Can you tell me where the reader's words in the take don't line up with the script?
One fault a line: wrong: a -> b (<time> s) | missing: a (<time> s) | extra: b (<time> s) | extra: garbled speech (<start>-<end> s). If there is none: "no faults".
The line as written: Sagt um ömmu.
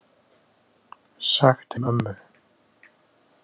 no faults